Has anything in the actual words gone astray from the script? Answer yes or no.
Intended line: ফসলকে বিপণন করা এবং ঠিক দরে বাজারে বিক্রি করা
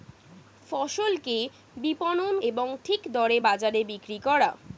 yes